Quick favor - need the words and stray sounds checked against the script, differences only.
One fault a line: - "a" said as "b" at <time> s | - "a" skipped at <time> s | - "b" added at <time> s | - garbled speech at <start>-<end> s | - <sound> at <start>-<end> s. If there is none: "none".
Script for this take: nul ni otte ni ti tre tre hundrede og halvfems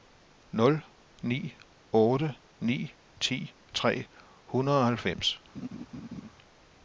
- "tre" skipped at 4.1 s
- laugh at 5.5-6.3 s